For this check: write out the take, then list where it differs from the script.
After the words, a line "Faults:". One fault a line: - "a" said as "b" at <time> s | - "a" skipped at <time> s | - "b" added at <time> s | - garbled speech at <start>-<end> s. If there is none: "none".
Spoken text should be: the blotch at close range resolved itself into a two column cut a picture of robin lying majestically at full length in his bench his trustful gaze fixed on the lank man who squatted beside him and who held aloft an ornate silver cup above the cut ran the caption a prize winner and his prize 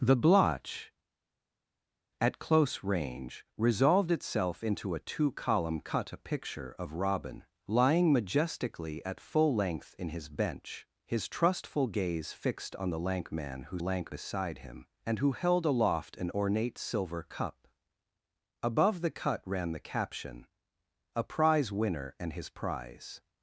the blotch at close range resolved itself into a two column cut a picture of robin lying majestically at full length in his bench his trustful gaze fixed on the lank man who lank beside him and who held aloft an ornate silver cup above the cut ran the caption a prize winner and his prize
Faults:
- "squatted" said as "lank" at 13.8 s